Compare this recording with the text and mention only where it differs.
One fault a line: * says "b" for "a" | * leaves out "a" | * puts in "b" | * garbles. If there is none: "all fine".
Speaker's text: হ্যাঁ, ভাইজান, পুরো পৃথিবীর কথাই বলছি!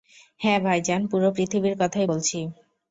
all fine